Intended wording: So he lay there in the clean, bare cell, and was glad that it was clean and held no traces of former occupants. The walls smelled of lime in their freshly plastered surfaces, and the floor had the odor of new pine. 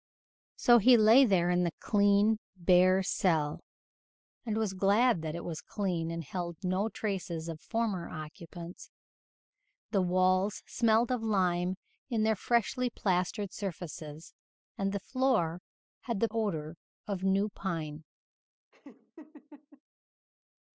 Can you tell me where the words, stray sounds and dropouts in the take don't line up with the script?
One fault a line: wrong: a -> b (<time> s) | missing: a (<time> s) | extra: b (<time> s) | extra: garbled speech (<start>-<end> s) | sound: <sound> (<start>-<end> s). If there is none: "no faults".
sound: laugh (18.7-19.8 s)